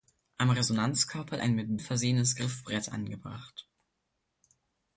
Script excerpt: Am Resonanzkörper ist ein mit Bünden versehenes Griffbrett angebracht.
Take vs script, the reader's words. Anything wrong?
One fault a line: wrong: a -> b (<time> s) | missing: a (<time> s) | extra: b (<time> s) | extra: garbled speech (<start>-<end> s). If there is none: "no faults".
missing: ist (1.4 s)
missing: Bünden (1.8 s)